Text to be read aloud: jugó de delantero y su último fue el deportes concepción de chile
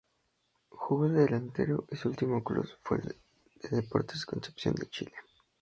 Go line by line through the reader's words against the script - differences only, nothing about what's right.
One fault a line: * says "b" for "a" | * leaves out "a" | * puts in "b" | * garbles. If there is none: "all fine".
* puts in "club"